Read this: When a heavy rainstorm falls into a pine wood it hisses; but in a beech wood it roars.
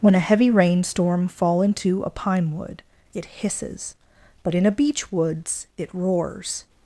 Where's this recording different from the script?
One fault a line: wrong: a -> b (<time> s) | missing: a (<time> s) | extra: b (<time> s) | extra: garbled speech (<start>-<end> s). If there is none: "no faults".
wrong: falls -> fall (1.3 s)
wrong: wood -> woods (5.1 s)